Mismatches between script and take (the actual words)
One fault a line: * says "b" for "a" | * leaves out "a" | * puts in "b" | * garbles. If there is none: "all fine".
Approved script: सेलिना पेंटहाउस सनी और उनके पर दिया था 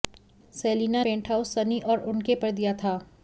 all fine